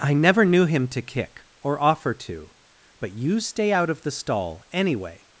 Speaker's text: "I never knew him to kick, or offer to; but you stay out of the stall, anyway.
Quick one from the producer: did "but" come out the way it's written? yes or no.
yes